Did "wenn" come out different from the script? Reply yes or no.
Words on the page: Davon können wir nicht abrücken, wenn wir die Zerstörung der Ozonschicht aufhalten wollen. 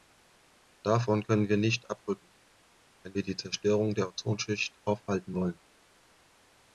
no